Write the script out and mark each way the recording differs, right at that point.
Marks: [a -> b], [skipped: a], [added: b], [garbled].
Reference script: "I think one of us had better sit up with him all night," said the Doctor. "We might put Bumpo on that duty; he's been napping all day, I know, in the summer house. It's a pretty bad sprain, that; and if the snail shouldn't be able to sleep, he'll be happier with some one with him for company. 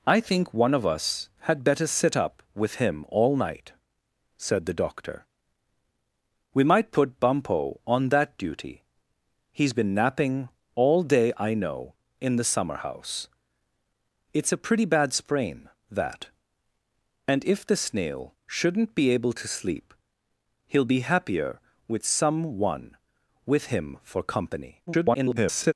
"I think one of us had better sit up with him all night," said the Doctor. "We might put Bumpo on that duty; he's been napping all day, I know, in the summer house. It's a pretty bad sprain, that; and if the snail shouldn't be able to sleep, he'll be happier with some one with him for company. [garbled]